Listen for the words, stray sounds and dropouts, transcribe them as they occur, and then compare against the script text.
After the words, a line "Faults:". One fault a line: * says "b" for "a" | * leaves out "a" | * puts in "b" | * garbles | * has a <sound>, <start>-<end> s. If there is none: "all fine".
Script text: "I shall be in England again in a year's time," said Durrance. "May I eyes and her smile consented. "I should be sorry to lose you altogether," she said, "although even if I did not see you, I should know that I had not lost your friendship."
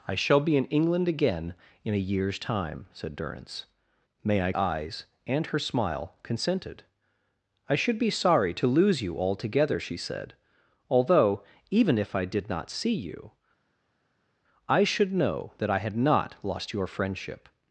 "I shall be in England again in a year's time," said Durrance. "May I eyes and her smile consented. "I should be sorry to lose you altogether," she said, "although even if I did not see you, I should know that I had not lost your friendship."
Faults:
all fine